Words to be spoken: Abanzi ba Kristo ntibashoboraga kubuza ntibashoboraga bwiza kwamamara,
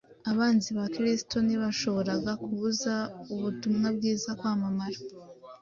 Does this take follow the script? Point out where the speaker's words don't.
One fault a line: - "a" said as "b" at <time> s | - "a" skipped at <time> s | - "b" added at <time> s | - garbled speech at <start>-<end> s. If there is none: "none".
- "ntibashoboraga" said as "ubutumwa" at 3.3 s